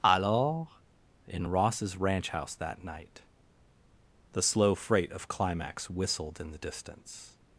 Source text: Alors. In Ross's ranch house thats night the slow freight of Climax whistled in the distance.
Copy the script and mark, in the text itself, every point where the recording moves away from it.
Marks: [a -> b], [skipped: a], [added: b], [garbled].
Alors. In Ross's ranch house [thats -> that] night the slow freight of Climax whistled in the distance.